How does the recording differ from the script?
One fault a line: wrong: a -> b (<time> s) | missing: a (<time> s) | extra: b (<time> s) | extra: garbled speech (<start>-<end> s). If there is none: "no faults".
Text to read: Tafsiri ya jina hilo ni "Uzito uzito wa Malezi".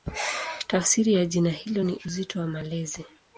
missing: uzito (2.4 s)